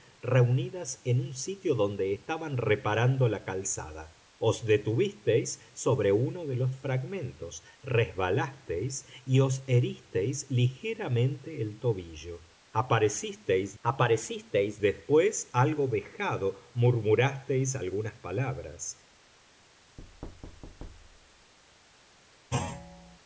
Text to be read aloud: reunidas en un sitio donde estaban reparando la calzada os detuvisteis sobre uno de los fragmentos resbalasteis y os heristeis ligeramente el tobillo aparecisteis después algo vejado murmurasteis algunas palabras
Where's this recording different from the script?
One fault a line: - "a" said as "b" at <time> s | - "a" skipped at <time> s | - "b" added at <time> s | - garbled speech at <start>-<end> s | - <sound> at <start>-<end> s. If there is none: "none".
- "aparecisteis" added at 13.8 s
- thud at 20.0-21.5 s
- thud at 22.5-23.2 s